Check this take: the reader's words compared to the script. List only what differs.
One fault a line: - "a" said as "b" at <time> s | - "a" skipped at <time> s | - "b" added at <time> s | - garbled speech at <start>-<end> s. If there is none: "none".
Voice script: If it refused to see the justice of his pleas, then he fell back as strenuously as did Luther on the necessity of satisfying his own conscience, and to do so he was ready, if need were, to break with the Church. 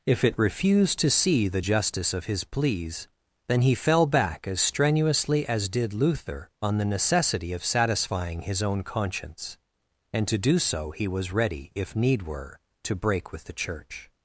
none